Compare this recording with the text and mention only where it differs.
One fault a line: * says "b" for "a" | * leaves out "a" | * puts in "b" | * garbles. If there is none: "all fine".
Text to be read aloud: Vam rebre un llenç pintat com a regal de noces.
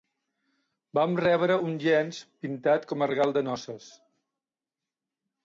all fine